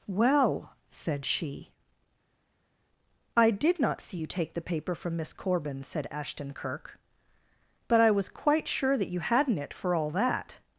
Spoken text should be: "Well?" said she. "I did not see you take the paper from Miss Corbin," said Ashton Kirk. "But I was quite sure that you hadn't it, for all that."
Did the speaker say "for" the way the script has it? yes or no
yes